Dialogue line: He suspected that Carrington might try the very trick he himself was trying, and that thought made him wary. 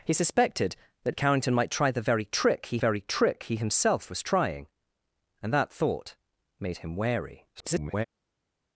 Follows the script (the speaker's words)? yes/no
no